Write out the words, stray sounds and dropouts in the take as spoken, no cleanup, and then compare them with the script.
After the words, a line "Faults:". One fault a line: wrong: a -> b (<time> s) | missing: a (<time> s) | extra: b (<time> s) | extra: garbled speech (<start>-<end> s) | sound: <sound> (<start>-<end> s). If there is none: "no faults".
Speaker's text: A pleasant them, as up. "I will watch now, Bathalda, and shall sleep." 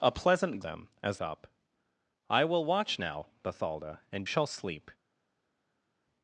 A pleasant them, as up. "I will watch now, Bathalda, and shall sleep."
Faults:
no faults